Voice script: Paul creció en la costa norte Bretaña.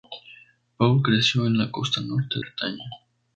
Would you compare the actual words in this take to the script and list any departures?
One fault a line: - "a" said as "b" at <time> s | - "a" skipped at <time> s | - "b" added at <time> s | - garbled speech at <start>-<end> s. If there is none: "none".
none